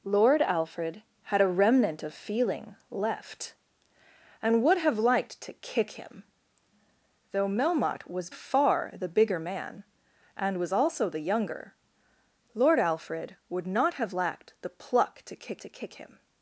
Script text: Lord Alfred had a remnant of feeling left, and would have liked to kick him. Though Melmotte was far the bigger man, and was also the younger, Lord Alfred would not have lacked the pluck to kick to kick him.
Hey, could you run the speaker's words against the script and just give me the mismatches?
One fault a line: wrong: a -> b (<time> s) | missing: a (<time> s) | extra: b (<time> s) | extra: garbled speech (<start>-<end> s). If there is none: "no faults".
no faults